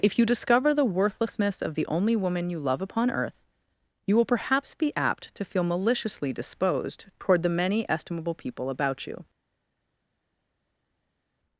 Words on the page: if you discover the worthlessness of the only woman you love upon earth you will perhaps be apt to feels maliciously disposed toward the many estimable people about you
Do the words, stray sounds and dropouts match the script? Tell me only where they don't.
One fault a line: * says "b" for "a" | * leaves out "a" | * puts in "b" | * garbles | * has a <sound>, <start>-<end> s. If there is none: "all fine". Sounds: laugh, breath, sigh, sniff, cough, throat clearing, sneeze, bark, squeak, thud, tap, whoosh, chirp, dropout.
* says "feel" for "feels"